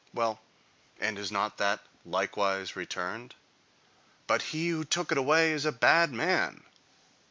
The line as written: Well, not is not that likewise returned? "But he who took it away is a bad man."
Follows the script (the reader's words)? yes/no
no